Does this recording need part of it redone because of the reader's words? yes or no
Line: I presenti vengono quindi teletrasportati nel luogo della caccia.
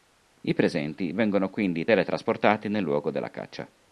no